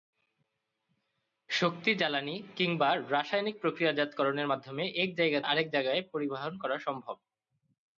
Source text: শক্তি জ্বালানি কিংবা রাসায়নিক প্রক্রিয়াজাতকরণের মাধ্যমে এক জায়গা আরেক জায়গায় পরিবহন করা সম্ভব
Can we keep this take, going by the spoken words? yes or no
yes